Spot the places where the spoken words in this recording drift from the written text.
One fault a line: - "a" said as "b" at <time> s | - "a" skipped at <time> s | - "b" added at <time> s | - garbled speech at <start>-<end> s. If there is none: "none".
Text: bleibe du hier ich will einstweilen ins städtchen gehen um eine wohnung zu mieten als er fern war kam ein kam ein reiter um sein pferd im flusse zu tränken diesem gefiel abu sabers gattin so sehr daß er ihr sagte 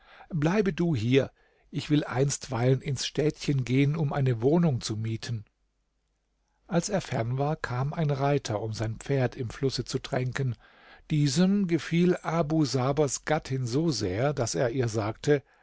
- "kam ein" skipped at 8.1 s